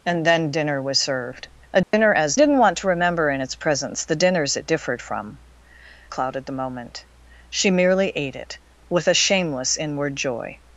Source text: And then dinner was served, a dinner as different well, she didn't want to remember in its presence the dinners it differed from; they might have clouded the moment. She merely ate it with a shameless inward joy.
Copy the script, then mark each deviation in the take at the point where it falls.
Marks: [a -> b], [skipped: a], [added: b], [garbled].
And then dinner was served, a dinner as [skipped: different well, she] didn't want to remember in its presence the dinners it differed from; [skipped: they might have] clouded the moment. She merely ate it with a shameless inward joy.